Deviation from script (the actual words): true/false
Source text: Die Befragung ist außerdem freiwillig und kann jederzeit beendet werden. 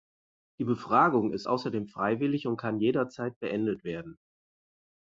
false